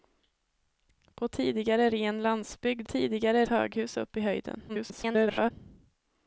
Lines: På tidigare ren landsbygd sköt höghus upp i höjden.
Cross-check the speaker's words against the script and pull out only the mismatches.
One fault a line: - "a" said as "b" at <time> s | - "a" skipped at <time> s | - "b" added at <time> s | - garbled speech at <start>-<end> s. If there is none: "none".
- "sköt" said as "tidigare" at 2.8 s
- garbled speech at 4.7-5.5 s